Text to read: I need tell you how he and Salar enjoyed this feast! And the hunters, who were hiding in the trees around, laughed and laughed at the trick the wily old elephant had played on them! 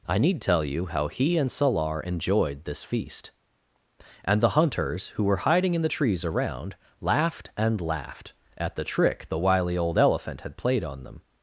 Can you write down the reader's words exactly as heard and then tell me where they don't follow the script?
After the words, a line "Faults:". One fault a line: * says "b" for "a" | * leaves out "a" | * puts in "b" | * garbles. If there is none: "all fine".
I need tell you how he and Salar enjoyed this feast! And the hunters, who were hiding in the trees around, laughed and laughed at the trick the wily old elephant had played on them!
Faults:
all fine